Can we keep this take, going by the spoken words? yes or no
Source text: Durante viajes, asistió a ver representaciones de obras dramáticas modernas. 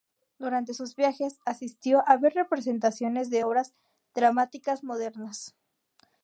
no